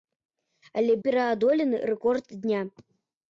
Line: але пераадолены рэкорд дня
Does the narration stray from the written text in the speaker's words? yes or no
no